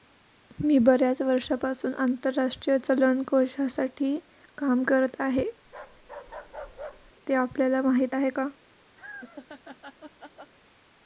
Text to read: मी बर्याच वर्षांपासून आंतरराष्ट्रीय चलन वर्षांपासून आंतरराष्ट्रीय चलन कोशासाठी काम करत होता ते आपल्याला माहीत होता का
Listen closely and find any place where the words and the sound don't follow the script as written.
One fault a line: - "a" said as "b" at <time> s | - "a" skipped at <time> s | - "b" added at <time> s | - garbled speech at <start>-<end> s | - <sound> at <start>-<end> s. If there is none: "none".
- "वर्षांपासून आंतरराष्ट्रीय चलन" skipped at 3.2 s
- "होता" said as "आहे" at 5.2 s
- bark at 5.6-7.1 s
- "होता" said as "आहे" at 8.1 s
- laugh at 9.0-10.5 s